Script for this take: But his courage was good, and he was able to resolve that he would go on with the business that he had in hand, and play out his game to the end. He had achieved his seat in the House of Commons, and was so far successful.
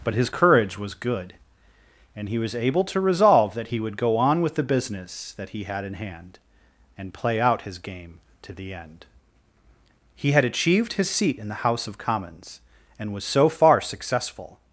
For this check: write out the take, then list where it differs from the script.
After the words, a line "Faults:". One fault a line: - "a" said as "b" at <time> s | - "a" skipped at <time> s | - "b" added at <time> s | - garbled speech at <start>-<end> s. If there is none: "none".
But his courage was good, and he was able to resolve that he would go on with the business that he had in hand, and play out his game to the end. He had achieved his seat in the House of Commons, and was so far successful.
Faults:
none